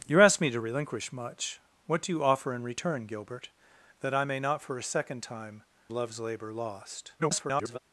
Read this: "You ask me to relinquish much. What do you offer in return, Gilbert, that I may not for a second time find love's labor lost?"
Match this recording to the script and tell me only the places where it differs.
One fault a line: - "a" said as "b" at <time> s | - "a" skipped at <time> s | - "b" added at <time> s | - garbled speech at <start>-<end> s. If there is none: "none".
- "find" skipped at 5.6 s
- garbled speech at 7.2-7.8 s